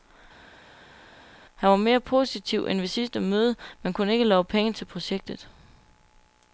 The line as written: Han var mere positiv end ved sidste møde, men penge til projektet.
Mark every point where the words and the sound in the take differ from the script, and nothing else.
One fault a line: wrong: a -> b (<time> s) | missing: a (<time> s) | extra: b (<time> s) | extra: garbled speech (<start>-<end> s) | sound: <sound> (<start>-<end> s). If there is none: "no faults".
extra: kunne ikke love (3.9 s)